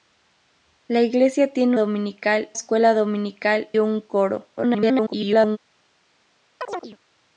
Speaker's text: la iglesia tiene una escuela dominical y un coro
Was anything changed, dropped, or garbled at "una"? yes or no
yes